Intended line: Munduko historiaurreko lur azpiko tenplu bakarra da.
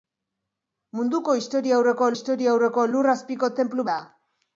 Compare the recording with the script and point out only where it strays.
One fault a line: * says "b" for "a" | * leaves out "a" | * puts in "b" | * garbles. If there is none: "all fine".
* puts in "historiaurreko"
* leaves out "bakarra"